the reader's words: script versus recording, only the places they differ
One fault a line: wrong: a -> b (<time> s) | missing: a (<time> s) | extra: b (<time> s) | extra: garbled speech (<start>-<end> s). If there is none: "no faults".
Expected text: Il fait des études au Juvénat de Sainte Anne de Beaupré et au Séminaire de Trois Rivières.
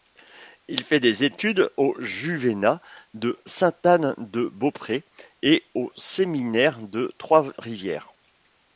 no faults